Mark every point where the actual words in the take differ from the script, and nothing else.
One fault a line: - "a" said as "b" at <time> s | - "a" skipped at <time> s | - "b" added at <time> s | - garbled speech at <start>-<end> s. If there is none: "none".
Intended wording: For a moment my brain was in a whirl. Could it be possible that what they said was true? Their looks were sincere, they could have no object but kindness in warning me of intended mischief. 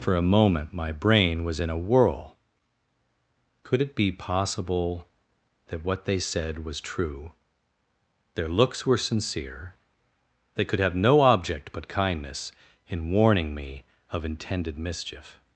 none